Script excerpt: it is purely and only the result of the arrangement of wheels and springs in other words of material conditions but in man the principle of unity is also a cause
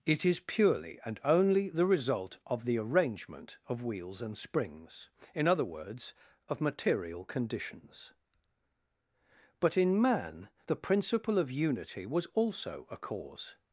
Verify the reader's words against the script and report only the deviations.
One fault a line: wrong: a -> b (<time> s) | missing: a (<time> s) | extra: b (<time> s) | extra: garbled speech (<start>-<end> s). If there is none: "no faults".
wrong: is -> was (12.1 s)